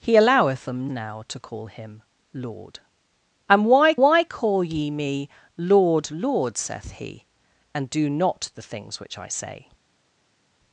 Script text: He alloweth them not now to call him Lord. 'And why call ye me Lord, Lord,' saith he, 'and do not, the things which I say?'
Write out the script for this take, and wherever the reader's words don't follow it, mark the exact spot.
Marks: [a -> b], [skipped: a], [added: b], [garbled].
He alloweth them [skipped: not] now to call him Lord. 'And why [added: why] call ye me Lord, Lord,' saith he, 'and do not, the things which I say?'